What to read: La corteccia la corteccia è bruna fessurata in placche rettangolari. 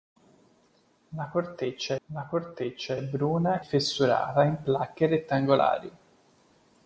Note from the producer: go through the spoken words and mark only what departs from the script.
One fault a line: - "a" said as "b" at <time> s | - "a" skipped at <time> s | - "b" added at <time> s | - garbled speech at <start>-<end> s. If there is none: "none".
none